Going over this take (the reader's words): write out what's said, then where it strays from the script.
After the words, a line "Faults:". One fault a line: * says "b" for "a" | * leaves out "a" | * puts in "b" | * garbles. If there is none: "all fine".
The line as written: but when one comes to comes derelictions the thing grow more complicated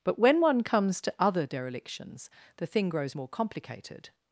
but when one comes to other derelictions the thing grows more complicated
Faults:
* says "other" for "comes"
* says "grows" for "grow"